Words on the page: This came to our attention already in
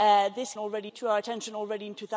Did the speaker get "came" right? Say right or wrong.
wrong